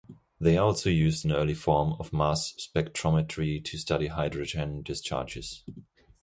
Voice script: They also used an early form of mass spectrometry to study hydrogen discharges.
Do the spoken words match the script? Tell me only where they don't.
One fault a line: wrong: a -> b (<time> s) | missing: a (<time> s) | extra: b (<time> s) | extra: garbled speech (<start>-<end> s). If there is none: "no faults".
no faults